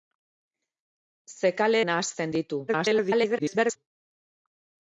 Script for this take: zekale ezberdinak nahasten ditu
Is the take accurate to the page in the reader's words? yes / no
no